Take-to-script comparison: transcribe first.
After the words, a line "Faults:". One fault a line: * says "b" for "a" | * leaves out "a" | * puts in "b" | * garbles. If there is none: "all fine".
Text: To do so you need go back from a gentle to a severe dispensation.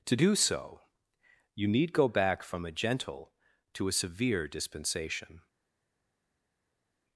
To do so you need go back from a gentle to a severe dispensation.
Faults:
all fine